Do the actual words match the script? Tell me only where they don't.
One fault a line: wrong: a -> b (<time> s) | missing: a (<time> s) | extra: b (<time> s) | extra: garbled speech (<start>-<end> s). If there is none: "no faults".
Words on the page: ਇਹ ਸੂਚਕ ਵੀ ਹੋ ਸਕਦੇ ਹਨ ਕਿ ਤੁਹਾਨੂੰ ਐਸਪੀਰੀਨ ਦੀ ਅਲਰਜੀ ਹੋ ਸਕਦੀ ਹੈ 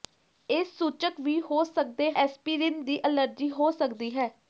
missing: ਹਨ ਕਿ ਤੁਹਾਨੂੰ (2.1 s)